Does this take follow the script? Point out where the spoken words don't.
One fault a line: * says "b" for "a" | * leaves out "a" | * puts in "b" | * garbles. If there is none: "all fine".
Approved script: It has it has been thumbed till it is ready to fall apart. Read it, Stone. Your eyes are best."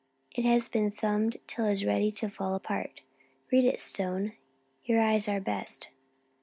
* leaves out "it has"